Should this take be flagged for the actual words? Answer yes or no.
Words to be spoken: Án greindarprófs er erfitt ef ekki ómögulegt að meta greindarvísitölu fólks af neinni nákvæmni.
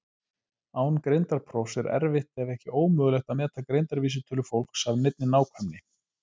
no